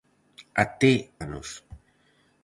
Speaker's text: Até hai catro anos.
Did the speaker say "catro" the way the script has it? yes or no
no